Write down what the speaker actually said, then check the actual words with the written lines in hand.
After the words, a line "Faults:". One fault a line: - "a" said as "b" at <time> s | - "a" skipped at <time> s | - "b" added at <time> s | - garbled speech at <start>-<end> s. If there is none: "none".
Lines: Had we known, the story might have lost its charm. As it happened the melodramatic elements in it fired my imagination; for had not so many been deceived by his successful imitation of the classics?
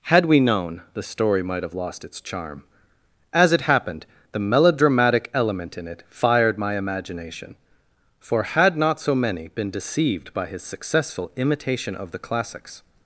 Had we known, the story might have lost its charm. As it happened the melodramatic element in it fired my imagination; for had not so many been deceived by his successful imitation of the classics?
Faults:
- "elements" said as "element" at 5.3 s